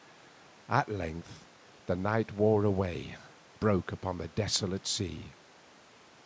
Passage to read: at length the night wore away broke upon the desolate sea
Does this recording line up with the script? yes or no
yes